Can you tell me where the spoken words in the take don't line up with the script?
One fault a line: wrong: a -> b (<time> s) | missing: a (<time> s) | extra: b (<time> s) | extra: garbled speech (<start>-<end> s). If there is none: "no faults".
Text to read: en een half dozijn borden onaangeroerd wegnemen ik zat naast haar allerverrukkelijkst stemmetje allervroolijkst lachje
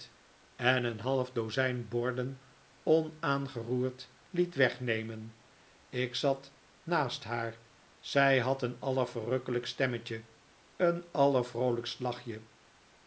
extra: liet (4.3 s)
extra: zij had een (8.0 s)
extra: een (10.8 s)